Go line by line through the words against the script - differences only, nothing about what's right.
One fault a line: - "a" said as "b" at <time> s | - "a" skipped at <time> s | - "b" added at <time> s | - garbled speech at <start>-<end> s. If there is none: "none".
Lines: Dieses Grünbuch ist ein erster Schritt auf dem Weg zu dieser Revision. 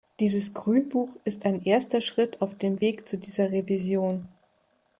none